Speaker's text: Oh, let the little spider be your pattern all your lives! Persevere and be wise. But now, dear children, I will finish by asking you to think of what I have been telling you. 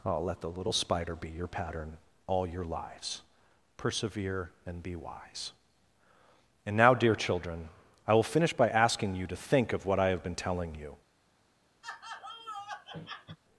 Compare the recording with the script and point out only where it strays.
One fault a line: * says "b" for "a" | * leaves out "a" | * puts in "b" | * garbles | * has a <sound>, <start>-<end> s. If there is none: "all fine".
* says "And" for "But"
* has a laugh, 11.8-13.4 s